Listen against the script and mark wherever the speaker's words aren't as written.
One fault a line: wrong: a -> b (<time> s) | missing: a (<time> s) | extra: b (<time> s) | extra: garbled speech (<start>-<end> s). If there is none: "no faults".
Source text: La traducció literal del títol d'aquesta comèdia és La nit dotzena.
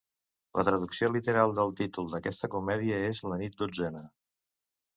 no faults